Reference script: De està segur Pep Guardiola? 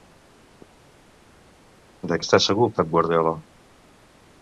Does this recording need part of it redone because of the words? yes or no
no